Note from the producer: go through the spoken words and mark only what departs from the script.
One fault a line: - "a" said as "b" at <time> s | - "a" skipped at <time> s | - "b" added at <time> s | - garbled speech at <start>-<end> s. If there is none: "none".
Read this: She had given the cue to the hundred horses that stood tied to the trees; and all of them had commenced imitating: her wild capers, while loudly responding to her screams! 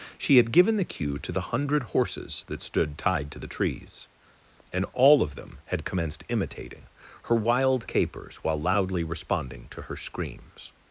none